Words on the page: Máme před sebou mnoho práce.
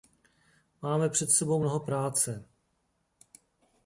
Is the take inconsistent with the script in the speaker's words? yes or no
no